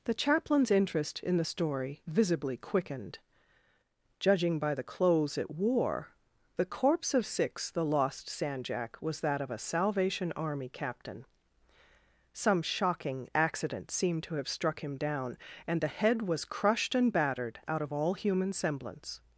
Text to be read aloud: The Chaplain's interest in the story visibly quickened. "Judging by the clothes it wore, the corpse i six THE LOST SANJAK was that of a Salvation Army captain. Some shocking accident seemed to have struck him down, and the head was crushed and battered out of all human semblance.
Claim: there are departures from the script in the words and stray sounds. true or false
true